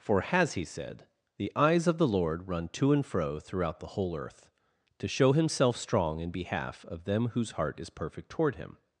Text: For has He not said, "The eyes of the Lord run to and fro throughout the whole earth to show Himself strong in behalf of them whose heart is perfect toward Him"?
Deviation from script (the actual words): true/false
true